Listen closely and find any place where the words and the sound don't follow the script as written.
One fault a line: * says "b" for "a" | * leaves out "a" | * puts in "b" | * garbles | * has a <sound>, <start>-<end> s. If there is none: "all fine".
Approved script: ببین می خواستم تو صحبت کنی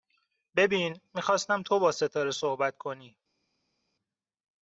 * puts in "با ستاره"